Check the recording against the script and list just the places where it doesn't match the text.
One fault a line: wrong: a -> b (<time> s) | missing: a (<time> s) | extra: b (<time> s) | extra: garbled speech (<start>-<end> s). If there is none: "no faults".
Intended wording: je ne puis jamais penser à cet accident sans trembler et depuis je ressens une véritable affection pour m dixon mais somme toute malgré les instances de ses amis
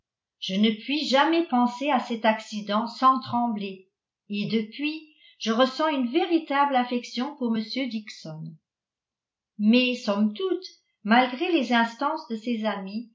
no faults